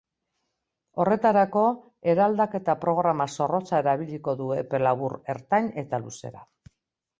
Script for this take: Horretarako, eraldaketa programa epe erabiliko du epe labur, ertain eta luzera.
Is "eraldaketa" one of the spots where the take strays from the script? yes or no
no